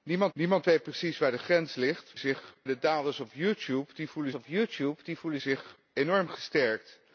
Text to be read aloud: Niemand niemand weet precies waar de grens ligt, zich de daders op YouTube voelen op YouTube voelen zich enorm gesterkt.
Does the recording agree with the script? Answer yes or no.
yes